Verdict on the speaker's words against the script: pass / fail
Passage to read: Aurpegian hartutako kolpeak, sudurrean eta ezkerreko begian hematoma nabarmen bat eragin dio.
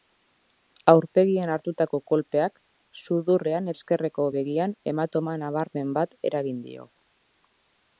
fail